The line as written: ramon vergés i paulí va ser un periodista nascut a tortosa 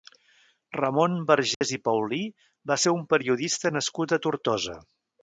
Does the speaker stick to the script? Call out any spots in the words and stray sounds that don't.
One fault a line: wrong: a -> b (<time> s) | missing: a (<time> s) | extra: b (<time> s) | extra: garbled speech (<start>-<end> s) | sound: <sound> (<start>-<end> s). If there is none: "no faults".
sound: dropout (1.5-1.6 s)